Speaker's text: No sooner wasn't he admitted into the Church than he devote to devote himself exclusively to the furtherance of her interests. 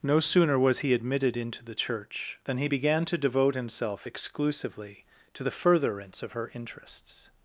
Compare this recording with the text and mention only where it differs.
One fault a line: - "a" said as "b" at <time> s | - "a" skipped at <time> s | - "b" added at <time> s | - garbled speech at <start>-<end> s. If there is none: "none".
- "wasn't" said as "was" at 0.6 s
- "devote" said as "began" at 2.6 s